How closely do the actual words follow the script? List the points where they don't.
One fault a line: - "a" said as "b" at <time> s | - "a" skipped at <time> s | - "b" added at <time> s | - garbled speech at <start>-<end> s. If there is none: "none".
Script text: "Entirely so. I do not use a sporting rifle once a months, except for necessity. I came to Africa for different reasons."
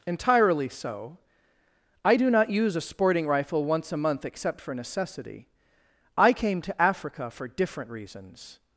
- "months" said as "month" at 4.0 s